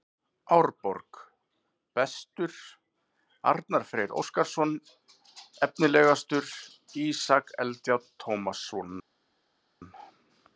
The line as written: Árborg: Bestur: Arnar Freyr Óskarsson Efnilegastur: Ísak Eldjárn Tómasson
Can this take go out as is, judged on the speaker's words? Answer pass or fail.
pass